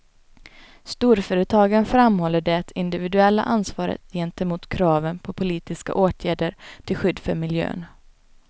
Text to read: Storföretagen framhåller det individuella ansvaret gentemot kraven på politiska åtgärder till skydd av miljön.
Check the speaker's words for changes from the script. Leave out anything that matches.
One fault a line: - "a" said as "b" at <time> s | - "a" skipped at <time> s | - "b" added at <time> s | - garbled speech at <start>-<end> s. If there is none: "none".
- "av" said as "för" at 7.2 s